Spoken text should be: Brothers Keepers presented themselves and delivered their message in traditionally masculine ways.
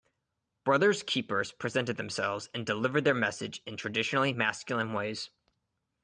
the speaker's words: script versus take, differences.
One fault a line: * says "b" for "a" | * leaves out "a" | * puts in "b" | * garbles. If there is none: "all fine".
all fine